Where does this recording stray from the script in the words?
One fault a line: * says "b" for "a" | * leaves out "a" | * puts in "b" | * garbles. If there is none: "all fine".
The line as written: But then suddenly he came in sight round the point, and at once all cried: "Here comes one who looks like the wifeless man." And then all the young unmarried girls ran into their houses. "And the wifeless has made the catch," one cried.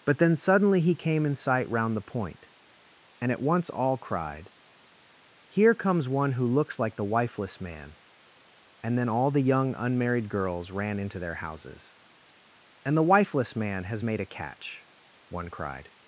* puts in "man"
* says "a" for "the"